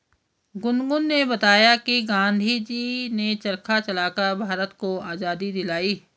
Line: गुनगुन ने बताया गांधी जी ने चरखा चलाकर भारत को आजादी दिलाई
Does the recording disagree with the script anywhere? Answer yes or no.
yes